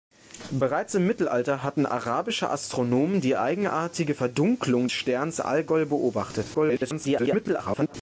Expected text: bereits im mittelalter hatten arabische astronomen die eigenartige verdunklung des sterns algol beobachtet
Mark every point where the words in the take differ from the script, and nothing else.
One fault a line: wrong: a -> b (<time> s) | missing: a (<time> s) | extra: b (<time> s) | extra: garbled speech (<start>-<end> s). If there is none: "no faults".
missing: des (4.9 s)
extra: garbled speech (6.5-7.9 s)